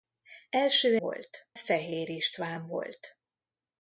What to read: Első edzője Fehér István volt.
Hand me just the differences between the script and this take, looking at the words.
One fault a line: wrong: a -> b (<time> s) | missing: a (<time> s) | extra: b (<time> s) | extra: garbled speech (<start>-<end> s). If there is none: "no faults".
wrong: edzője -> volt (1.0 s)